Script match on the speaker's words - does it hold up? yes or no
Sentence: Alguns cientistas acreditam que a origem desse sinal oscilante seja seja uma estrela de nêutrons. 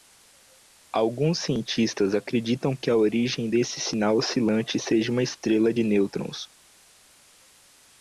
no